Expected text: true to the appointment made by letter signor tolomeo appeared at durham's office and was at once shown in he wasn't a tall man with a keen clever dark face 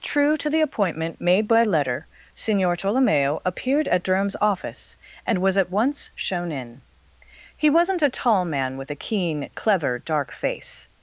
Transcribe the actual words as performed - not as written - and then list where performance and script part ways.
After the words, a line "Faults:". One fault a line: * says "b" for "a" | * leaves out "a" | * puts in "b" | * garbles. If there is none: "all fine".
true to the appointment made by letter signor tolomeo appeared at durham's office and was at once shown in he wasn't a tall man with a keen clever dark face
Faults:
all fine